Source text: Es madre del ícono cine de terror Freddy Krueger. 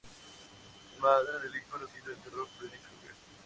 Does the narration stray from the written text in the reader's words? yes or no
no